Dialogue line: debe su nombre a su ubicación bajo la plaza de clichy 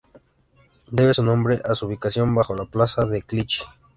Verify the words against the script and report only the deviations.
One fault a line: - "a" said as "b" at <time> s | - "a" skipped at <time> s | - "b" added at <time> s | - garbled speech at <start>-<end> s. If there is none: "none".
none